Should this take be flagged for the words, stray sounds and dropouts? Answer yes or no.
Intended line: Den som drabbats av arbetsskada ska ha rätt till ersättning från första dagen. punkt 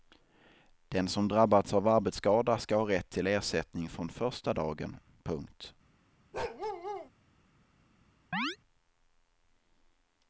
yes